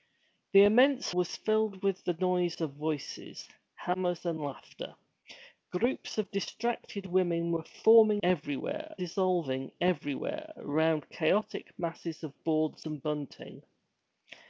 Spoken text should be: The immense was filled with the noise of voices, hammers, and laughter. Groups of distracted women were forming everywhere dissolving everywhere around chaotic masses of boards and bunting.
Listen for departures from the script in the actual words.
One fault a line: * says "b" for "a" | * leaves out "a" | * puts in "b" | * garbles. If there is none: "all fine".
all fine